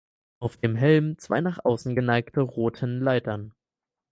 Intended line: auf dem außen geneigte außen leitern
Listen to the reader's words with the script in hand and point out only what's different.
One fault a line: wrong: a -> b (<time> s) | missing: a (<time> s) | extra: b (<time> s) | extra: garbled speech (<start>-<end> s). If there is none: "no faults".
extra: helm zwei nach (0.8 s)
wrong: außen -> roten (2.4 s)